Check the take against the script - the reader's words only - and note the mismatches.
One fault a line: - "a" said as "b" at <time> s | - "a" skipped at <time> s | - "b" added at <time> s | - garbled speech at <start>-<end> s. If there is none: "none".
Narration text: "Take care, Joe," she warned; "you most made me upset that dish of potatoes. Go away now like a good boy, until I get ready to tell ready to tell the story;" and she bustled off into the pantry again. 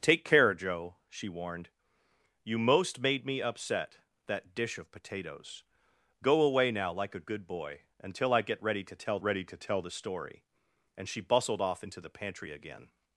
none